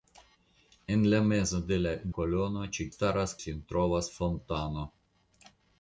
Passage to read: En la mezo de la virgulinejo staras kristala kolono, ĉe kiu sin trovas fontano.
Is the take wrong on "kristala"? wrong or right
wrong